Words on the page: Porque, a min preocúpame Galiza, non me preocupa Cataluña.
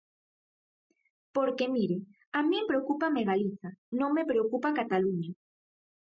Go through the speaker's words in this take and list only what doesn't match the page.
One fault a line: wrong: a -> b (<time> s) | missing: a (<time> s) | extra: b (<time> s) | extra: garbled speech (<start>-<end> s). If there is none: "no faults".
extra: mire (1.8 s)